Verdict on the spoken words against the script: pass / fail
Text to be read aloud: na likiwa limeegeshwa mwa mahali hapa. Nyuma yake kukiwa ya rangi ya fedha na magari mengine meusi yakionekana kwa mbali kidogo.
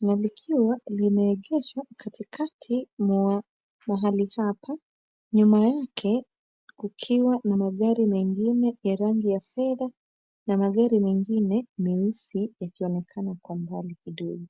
fail